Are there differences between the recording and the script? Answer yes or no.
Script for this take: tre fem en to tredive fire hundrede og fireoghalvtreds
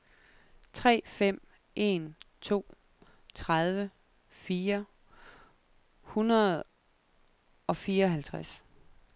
no